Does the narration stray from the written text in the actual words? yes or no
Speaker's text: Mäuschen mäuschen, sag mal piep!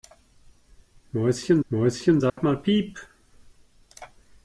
no